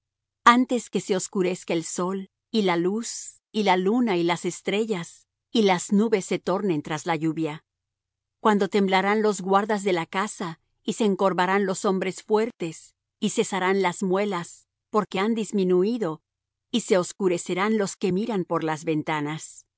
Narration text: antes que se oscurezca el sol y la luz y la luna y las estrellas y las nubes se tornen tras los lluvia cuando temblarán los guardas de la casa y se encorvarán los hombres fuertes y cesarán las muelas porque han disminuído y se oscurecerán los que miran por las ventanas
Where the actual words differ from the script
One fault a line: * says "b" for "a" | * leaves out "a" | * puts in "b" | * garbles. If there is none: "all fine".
* says "la" for "los"